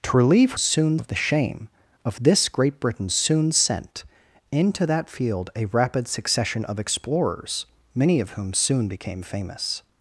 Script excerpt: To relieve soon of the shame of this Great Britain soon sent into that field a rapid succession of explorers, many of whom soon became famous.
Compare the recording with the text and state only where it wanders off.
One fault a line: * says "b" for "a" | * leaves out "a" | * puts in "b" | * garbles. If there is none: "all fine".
all fine